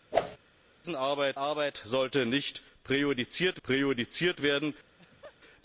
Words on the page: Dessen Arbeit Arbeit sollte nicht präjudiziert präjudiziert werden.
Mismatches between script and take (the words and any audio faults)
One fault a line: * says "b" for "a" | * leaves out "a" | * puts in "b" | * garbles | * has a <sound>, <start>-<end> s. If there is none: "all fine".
* has a whoosh, 0.1-0.4 s
* has a laugh, 4.9-5.4 s